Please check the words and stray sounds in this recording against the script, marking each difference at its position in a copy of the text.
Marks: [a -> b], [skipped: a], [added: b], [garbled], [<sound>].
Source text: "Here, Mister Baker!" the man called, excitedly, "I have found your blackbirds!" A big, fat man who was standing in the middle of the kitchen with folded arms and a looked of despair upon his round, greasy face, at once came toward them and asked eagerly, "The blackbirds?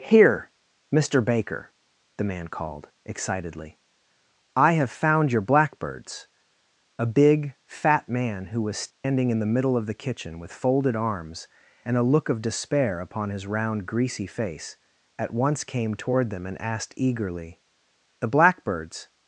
"Here, Mister Baker!" the man called, excitedly, "I have found your blackbirds!" A big, fat man who was standing [dropout] in the middle of the kitchen with folded arms and a [looked -> look] of despair upon his round, greasy face, at once came toward them and asked eagerly, "The blackbirds?